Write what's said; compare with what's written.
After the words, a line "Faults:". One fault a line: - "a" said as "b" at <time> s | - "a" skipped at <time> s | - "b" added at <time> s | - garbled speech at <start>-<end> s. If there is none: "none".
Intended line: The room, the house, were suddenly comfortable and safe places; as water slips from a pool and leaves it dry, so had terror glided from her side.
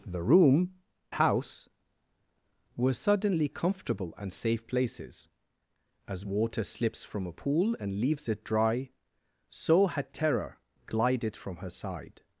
The room, house, were suddenly comfortable and safe places; as water slips from a pool and leaves it dry, so had terror glided from her side.
Faults:
- "the" skipped at 0.7 s